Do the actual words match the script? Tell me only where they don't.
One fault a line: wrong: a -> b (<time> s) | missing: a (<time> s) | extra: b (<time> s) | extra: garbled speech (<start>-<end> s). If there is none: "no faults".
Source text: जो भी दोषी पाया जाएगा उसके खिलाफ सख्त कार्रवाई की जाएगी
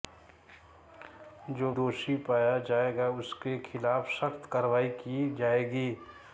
missing: भी (1.7 s)